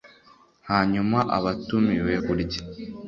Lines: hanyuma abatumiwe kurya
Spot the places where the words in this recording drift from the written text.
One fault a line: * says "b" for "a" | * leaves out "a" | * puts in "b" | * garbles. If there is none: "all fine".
all fine